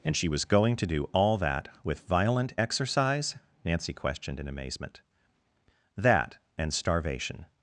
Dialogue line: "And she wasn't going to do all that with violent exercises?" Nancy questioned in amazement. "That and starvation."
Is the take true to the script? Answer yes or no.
no